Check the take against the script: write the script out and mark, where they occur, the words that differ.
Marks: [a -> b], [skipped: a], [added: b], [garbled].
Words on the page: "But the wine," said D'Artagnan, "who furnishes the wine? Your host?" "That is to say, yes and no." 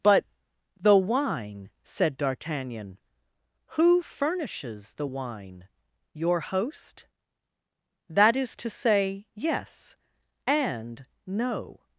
"But the wine," said D'Artagnan, "who furnishes the wine? Your host?" "That is to say, yes and no."